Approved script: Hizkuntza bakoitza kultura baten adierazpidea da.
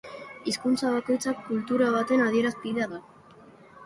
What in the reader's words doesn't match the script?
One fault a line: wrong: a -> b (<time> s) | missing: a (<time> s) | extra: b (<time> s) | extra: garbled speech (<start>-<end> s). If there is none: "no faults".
no faults